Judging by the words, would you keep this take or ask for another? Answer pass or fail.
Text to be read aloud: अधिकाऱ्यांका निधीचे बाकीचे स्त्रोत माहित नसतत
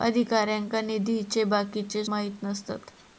fail